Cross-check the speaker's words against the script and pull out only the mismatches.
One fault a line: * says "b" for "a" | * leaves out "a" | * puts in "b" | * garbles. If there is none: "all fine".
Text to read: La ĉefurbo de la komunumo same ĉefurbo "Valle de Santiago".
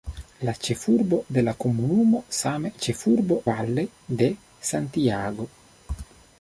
all fine